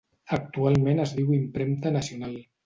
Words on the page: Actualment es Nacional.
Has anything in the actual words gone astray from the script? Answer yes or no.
yes